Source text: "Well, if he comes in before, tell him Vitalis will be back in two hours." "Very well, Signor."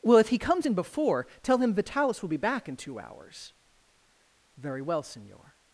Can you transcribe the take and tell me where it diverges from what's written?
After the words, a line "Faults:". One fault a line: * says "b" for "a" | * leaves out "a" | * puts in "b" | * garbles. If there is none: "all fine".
"Well, if he comes in before, tell him Vitalis will be back in two hours." "Very well, Signor."
Faults:
all fine